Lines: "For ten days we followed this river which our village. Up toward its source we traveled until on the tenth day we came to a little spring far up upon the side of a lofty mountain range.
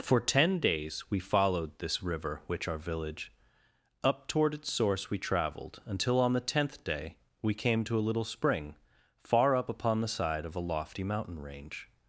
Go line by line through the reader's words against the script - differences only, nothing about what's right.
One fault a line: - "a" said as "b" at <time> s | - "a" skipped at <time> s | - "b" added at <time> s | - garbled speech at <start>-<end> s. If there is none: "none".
none